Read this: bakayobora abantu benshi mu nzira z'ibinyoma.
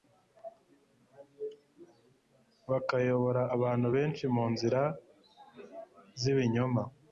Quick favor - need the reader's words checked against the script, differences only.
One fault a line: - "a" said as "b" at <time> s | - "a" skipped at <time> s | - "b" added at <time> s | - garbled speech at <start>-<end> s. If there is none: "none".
none